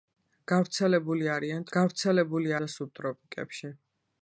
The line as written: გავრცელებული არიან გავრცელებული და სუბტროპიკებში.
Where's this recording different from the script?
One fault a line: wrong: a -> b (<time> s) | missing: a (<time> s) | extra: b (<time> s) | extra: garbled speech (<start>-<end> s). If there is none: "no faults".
no faults